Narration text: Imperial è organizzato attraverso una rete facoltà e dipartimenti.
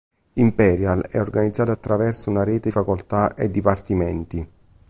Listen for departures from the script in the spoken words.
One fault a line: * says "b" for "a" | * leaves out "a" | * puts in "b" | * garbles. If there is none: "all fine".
all fine